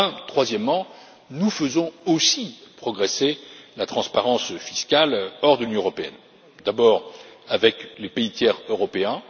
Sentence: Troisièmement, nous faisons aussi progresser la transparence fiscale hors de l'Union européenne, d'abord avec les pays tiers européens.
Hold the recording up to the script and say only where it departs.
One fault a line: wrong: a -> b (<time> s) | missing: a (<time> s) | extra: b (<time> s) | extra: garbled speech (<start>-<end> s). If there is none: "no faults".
no faults